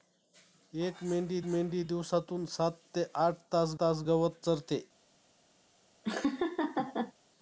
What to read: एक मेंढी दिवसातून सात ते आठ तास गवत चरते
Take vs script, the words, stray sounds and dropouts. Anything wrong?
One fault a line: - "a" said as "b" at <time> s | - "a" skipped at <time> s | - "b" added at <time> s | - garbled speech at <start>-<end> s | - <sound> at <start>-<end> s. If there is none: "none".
- "मेंढी" added at 1.5 s
- "तास" added at 3.8 s
- laugh at 6.0-7.1 s